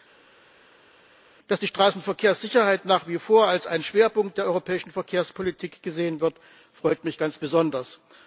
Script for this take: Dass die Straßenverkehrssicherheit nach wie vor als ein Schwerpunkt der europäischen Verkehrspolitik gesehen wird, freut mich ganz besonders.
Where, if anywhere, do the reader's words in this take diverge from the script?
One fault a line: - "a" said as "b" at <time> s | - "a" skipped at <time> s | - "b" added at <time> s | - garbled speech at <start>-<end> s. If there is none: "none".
none